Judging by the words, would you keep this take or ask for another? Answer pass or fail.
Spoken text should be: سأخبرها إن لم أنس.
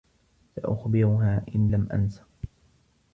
pass